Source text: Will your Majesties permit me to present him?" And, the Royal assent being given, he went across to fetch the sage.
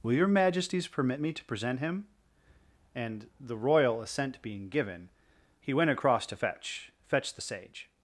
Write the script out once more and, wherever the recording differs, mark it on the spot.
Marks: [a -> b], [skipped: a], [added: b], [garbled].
Will your Majesties permit me to present him?" And, the Royal assent being given, he went across to fetch [added: fetch] the sage.